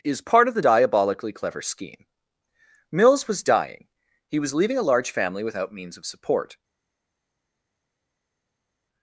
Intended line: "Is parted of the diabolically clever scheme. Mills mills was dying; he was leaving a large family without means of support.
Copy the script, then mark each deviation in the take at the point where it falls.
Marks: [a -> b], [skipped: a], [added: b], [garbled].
"Is [parted -> part] of the diabolically clever scheme. Mills [skipped: mills] was dying; he was leaving a large family without means of support.